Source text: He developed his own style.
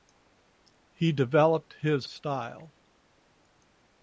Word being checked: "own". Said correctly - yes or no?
no